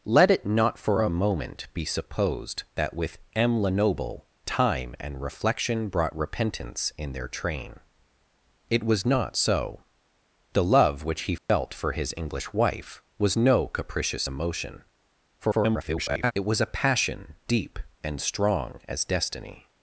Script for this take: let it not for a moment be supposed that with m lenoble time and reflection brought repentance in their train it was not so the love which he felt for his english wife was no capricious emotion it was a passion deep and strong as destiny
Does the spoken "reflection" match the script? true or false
true